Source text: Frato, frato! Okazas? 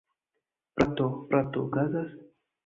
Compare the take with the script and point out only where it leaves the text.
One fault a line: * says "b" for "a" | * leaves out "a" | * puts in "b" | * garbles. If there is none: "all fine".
all fine